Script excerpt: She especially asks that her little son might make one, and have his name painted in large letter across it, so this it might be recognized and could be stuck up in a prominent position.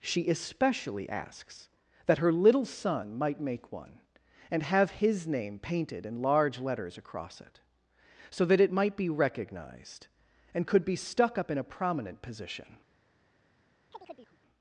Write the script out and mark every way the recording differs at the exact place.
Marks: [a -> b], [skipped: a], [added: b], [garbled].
She especially asks that her little son might make one, and have his name painted in large [letter -> letters] across it, so [this -> that] it might be recognized and could be stuck up in a prominent position.